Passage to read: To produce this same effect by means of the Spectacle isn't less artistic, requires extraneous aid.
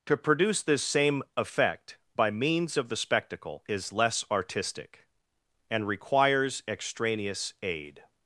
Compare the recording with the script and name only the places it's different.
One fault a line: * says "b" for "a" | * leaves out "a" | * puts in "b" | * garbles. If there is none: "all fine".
* says "is" for "isn't"
* puts in "and"